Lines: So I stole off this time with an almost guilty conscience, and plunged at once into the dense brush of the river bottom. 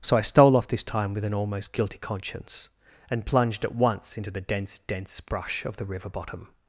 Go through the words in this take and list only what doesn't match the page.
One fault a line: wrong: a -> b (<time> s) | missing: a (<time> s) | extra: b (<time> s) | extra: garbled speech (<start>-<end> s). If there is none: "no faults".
extra: dense (4.8 s)